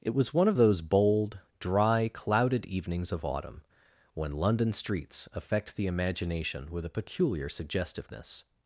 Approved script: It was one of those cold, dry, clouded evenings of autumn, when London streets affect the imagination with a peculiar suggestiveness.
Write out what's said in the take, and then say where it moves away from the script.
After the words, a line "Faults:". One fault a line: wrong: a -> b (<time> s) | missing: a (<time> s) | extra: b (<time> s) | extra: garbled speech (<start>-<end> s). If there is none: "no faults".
It was one of those bold, dry, clouded evenings of autumn, when London streets affect the imagination with a peculiar suggestiveness.
Faults:
wrong: cold -> bold (0.8 s)